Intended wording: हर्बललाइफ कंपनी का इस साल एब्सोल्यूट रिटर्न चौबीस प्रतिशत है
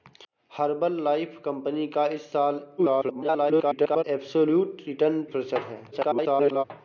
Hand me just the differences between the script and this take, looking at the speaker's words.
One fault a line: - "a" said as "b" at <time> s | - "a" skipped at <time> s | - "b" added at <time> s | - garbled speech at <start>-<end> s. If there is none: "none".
- garbled speech at 2.8-4.0 s
- "चौबीस" skipped at 5.2 s
- garbled speech at 5.9-6.6 s